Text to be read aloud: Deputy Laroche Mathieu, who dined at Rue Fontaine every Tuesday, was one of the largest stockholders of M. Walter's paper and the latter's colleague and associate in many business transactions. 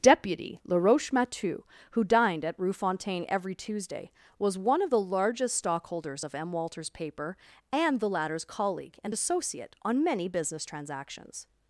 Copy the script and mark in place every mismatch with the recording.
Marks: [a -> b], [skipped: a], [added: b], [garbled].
Deputy Laroche Mathieu, who dined at Rue Fontaine every Tuesday, was one of the largest stockholders of M. Walter's paper and the latter's colleague and associate [in -> on] many business transactions.